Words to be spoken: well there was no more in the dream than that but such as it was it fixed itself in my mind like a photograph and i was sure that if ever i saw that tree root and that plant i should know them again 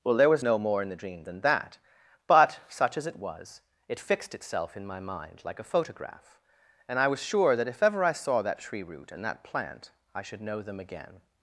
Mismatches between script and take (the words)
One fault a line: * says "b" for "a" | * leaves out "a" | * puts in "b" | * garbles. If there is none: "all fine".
all fine